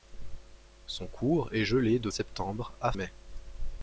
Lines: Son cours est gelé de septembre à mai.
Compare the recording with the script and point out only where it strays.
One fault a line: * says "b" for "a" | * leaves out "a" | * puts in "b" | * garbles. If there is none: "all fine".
all fine